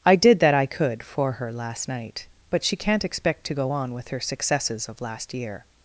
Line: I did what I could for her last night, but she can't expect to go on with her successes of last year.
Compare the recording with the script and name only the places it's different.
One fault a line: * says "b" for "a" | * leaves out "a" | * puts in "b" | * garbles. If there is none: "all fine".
* says "that" for "what"